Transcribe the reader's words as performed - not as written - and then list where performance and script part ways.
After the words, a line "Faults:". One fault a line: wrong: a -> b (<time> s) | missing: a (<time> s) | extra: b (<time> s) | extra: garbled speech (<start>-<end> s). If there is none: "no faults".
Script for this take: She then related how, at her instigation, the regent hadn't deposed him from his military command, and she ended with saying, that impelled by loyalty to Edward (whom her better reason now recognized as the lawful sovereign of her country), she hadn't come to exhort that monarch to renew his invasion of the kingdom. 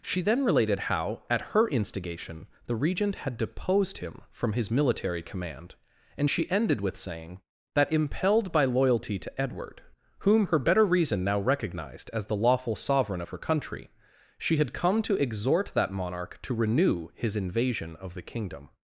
She then related how, at her instigation, the regent had deposed him from his military command, and she ended with saying, that impelled by loyalty to Edward (whom her better reason now recognized as the lawful sovereign of her country), she had come to exhort that monarch to renew his invasion of the kingdom.
Faults:
wrong: hadn't -> had (3.2 s)
wrong: hadn't -> had (14.6 s)